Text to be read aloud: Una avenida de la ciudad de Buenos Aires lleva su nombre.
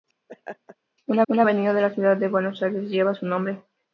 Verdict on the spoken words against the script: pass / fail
fail